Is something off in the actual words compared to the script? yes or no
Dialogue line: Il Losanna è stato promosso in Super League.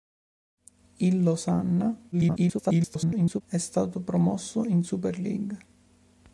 yes